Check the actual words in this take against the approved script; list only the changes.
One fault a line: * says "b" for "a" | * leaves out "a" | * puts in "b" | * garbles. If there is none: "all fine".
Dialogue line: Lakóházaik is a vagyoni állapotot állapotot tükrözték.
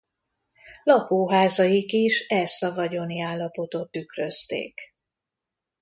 * puts in "ezt"
* leaves out "állapotot"